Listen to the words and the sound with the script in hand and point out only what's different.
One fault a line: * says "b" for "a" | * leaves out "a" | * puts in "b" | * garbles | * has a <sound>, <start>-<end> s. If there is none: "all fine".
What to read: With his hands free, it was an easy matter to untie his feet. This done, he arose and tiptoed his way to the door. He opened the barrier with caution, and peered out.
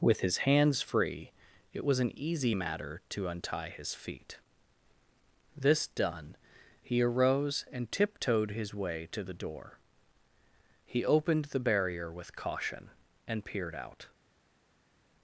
all fine